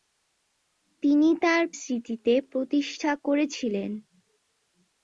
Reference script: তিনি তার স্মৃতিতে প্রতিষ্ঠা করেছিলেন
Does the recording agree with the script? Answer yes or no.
yes